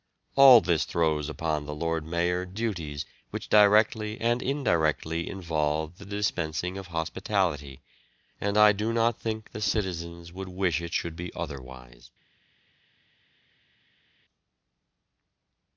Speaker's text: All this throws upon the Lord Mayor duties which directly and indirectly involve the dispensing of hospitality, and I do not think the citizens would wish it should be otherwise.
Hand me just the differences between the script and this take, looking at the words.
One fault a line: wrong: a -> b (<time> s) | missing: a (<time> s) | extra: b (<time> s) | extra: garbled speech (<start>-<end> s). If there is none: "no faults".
no faults